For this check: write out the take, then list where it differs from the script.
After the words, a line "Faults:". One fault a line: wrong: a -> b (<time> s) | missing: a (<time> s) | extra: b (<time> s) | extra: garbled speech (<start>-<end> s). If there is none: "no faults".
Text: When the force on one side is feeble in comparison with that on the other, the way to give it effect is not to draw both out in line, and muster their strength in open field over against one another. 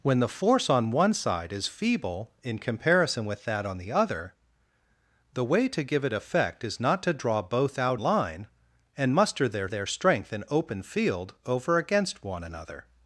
When the force on one side is feeble in comparison with that on the other, the way to give it effect is not to draw both out line, and muster their their strength in open field over against one another.
Faults:
missing: in (8.0 s)
extra: their (9.6 s)